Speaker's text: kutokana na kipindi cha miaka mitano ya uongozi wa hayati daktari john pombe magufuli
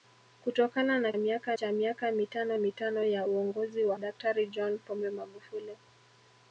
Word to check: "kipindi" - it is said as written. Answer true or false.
false